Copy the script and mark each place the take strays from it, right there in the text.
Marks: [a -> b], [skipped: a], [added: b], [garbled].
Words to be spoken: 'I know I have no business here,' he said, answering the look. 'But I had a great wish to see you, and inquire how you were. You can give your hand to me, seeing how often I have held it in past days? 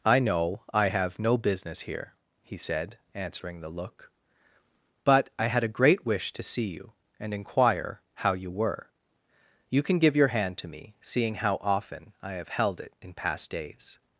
'I know I have no business here,' he said, answering the look. 'But I had a great wish to see you, and inquire how you were. You can give your hand to me, seeing how often I have held it in past days?